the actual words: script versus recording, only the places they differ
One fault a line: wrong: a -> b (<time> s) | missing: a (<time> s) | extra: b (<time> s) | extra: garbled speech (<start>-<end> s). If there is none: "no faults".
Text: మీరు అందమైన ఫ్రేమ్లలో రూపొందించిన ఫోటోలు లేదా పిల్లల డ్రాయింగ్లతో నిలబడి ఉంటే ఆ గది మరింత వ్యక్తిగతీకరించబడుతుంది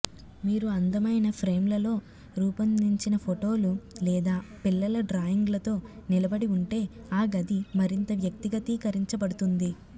no faults